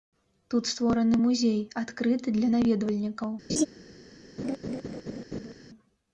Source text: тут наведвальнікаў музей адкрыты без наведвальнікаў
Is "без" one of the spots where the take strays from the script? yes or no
yes